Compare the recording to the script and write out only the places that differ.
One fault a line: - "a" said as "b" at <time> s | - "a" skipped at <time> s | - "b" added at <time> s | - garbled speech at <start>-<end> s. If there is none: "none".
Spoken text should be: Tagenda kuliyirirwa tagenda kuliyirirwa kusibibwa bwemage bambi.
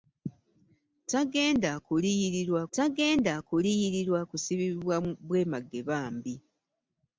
none